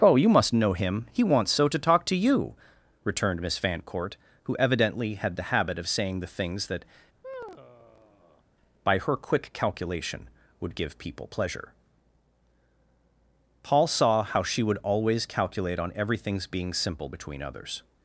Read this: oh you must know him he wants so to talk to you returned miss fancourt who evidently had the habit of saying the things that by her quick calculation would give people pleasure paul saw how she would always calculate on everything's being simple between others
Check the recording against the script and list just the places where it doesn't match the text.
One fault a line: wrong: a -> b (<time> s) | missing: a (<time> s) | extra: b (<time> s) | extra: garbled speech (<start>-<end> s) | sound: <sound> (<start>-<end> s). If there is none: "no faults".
sound: sigh (7.2-8.4 s)